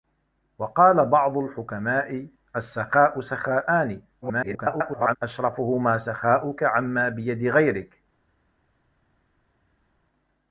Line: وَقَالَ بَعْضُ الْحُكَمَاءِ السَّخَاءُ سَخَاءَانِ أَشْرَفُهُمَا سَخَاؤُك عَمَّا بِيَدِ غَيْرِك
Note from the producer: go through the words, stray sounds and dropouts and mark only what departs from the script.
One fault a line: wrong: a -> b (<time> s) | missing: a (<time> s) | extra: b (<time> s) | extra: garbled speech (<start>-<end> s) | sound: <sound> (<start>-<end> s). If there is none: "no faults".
extra: garbled speech (4.2-5.2 s)